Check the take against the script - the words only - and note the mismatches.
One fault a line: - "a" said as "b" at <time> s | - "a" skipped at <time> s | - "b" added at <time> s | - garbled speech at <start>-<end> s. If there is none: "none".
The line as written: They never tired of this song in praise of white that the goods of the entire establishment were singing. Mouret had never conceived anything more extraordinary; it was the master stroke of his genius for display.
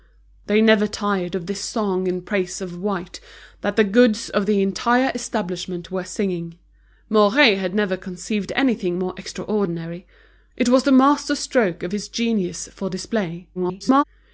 - garbled speech at 13.5-14.0 s